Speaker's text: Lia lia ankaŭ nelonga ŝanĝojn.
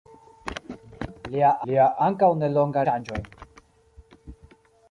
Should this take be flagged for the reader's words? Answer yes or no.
no